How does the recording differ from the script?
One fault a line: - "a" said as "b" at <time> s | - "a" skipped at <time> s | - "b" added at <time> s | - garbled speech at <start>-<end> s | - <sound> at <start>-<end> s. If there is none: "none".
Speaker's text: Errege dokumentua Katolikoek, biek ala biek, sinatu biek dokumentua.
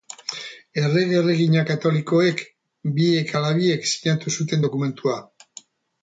- "dokumentua" said as "erregina" at 1.2 s
- "biek" said as "zuten" at 4.4 s